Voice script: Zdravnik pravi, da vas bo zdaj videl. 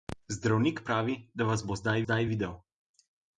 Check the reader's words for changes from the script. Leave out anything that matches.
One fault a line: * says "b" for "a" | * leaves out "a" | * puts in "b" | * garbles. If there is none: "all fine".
* puts in "zdaj"